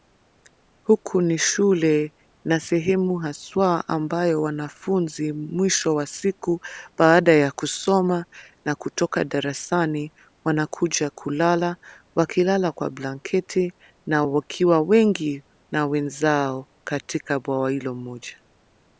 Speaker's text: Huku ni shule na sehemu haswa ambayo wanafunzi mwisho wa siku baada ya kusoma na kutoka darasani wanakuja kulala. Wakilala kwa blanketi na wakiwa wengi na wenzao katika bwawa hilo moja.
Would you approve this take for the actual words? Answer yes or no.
yes